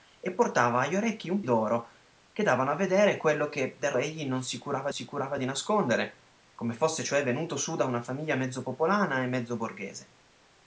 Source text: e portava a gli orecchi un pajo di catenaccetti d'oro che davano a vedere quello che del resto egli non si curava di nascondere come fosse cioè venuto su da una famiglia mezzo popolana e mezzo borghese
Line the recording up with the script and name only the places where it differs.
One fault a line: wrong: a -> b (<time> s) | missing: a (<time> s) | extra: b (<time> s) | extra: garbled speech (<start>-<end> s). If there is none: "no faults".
missing: pajo di catenaccetti (1.4 s)
missing: resto (3.9 s)
extra: si curava (4.9 s)